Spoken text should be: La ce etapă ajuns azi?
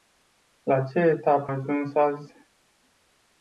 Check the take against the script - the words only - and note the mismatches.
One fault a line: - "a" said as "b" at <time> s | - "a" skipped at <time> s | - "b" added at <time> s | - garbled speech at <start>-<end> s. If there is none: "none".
none